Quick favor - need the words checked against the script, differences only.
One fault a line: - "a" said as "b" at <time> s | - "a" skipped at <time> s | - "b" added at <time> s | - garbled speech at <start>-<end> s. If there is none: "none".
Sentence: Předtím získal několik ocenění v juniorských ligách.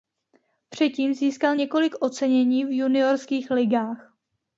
none